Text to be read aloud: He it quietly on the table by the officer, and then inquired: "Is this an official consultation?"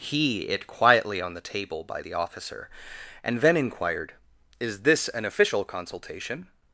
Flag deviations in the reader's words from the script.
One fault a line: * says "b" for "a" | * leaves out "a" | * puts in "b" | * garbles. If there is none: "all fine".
all fine